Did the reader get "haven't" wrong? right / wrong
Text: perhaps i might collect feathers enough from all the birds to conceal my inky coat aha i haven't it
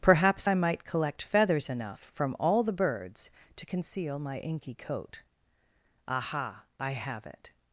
wrong